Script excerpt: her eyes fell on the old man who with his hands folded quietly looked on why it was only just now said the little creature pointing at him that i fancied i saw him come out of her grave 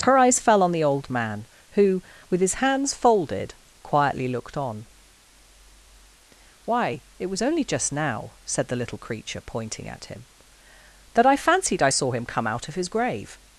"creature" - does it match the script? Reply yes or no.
yes